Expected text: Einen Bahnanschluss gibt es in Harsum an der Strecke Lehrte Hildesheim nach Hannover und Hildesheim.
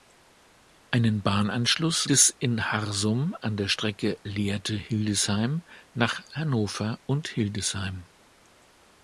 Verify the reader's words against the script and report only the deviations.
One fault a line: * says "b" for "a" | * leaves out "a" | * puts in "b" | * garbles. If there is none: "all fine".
* leaves out "gibt"